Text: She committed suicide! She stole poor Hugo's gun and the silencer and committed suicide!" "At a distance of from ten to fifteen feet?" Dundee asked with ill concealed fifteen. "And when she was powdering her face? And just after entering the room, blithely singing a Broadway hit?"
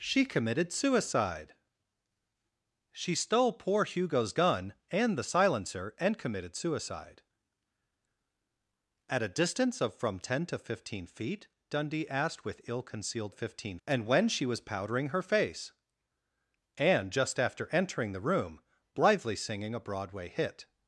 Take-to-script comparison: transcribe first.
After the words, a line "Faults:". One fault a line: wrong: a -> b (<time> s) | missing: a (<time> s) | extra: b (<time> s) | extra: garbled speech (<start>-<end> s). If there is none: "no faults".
She committed suicide! She stole poor Hugo's gun and the silencer and committed suicide!" "At a distance of from ten to fifteen feet?" Dundee asked with ill concealed fifteen. "And when she was powdering her face? And just after entering the room, blithely singing a Broadway hit?"
Faults:
no faults